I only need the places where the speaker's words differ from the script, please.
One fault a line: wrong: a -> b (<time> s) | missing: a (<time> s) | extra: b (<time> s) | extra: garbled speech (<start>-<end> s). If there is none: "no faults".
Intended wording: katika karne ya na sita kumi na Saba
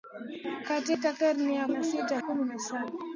no faults